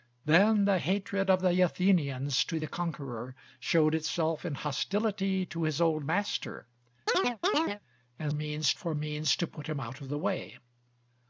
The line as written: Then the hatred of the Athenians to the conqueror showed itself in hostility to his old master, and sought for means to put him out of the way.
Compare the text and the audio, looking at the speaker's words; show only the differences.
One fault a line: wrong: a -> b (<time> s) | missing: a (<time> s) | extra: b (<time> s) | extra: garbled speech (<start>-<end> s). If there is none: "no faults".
wrong: sought -> means (8.3 s)